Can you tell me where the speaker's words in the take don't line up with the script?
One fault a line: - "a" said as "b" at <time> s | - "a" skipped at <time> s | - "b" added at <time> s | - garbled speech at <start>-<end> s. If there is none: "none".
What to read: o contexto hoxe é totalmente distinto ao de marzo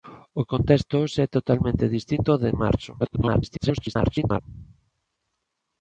- garbled speech at 3.0-4.4 s